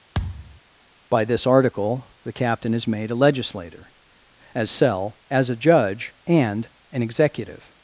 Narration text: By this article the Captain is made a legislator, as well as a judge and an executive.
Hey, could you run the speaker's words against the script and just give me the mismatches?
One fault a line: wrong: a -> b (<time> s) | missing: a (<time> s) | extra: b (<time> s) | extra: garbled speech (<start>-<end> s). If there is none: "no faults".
wrong: well -> cell (4.7 s)